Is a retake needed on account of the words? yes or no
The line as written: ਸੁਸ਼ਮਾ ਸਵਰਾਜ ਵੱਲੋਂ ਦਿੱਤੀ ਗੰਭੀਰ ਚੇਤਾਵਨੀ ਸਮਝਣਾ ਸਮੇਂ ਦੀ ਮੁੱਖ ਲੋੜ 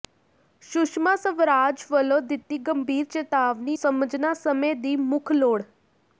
no